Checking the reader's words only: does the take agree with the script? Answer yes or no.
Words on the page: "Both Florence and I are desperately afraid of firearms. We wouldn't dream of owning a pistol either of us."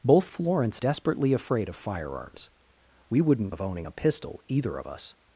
no